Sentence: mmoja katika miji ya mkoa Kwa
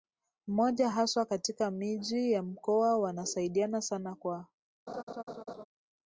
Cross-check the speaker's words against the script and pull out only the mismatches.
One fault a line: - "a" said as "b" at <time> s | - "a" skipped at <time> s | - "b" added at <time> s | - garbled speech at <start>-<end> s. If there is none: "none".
- "haswa" added at 0.9 s
- "Wanasaidiana sana" added at 3.0 s